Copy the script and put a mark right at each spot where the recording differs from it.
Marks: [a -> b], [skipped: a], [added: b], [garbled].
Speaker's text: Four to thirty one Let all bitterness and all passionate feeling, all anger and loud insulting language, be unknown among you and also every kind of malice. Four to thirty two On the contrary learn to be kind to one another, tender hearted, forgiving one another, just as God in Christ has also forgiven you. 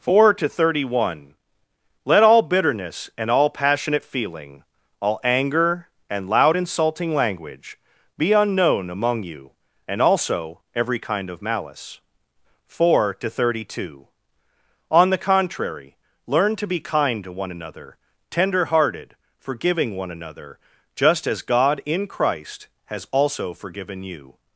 Four to thirty one Let all bitterness and all passionate feeling, all anger and loud insulting language, be unknown among you and also every kind of malice. Four to thirty two On the contrary learn to be kind to one another, tender hearted, forgiving one another, just as God in Christ has also forgiven you.